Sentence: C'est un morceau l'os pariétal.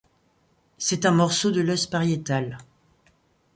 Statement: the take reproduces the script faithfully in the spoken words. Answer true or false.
false